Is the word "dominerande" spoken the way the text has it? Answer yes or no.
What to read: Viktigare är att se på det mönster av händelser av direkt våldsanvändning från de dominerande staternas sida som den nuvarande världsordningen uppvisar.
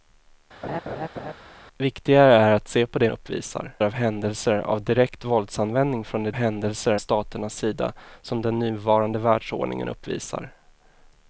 no